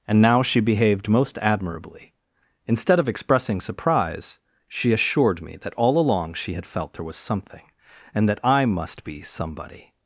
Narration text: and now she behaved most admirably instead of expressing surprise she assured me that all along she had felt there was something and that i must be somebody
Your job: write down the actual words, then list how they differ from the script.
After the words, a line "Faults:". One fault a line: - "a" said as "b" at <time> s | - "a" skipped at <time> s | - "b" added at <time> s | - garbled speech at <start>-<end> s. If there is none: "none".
and now she behaved most admirably instead of expressing surprise she assured me that all along she had felt there was something and that i must be somebody
Faults:
none